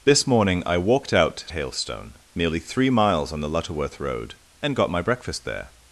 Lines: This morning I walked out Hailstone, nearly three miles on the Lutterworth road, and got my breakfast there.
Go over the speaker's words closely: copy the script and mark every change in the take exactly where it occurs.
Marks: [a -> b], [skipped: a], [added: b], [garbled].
This morning I walked out Hailstone, nearly three miles on the Lutterworth road, and got my breakfast there.